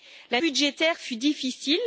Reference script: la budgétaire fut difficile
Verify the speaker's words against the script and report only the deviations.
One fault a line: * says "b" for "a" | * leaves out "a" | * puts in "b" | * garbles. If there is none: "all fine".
all fine